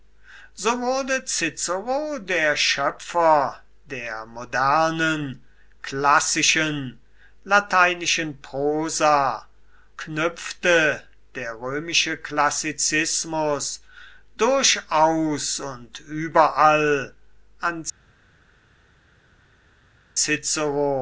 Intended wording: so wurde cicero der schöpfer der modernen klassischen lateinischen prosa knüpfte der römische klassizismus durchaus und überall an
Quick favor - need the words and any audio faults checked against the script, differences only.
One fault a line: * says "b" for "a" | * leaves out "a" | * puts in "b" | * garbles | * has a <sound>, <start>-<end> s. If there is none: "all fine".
all fine